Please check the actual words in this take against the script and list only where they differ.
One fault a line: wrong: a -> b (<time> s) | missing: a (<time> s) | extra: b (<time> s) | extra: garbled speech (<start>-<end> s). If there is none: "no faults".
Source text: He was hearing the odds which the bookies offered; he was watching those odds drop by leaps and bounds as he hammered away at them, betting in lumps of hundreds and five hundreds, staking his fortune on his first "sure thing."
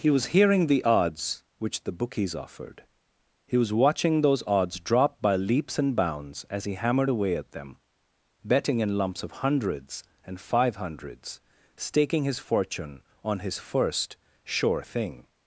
no faults